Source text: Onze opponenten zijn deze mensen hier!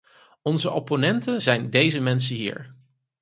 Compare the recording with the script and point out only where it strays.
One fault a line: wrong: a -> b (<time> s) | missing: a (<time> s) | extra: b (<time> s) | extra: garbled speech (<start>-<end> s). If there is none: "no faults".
no faults